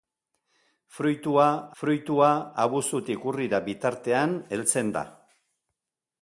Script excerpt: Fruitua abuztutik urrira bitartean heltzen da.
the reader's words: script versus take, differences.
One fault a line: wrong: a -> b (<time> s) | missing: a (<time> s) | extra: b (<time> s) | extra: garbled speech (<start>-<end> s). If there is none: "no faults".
extra: fruitua (1.8 s)